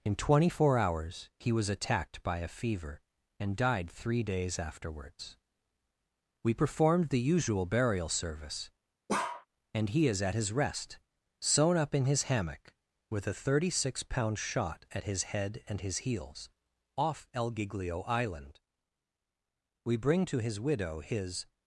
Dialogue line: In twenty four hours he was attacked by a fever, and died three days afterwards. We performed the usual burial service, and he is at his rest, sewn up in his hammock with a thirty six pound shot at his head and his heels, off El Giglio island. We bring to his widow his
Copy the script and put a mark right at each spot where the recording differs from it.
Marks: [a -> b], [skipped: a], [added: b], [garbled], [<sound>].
In twenty four hours he was attacked by a fever, and died three days afterwards. We performed the usual burial service, [bark] and he is at his rest, sewn up in his hammock with a thirty six pound shot at his head and his heels, off El Giglio island. We bring to his widow his